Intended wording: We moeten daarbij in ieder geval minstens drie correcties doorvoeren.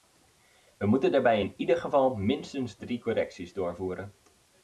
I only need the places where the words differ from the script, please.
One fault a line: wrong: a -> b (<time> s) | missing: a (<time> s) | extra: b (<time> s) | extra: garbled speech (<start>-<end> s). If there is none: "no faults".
no faults